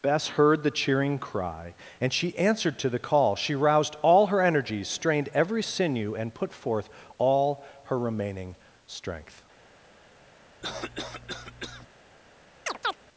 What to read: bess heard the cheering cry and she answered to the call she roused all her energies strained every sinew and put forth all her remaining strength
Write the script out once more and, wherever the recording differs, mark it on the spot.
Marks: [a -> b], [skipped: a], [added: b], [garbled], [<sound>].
bess heard the cheering cry and she answered to the call she roused all her energies strained every sinew and put forth all her remaining strength [cough] [chirp]